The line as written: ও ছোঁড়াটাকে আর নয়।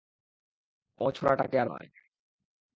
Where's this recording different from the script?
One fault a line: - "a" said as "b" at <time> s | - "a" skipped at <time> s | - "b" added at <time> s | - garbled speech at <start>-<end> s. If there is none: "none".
none